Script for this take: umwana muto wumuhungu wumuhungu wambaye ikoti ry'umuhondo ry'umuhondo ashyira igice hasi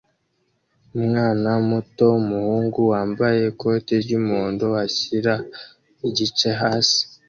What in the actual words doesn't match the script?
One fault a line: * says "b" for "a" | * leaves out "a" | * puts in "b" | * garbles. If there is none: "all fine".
* leaves out "wumuhungu"
* leaves out "ry'umuhondo"